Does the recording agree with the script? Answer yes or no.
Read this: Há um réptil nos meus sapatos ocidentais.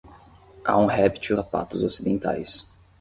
no